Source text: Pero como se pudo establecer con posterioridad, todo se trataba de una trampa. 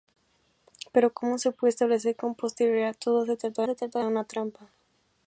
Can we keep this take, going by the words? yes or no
no